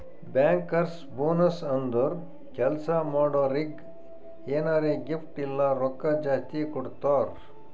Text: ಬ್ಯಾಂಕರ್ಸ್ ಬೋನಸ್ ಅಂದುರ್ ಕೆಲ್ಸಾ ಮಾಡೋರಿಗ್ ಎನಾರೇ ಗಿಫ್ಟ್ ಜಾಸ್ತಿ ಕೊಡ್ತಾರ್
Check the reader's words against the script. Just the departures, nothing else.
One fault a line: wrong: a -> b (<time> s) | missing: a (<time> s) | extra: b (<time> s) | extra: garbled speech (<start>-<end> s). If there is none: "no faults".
extra: ಇಲ್ಲ ರೊಕ್ಕಾ (5.4 s)